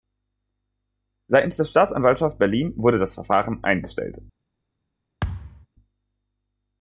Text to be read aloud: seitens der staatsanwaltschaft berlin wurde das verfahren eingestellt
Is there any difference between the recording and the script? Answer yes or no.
no